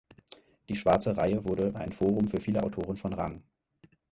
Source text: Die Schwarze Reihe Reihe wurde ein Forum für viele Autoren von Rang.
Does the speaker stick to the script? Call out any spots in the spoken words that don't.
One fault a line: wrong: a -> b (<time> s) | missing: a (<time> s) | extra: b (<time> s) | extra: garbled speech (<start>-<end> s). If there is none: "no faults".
missing: Reihe (1.4 s)